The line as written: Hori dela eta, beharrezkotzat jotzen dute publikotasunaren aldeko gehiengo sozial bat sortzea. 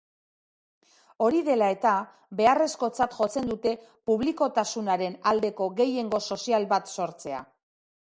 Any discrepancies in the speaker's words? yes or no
no